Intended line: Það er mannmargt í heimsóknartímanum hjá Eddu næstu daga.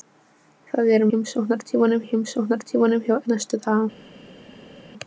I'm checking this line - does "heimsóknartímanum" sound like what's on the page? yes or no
yes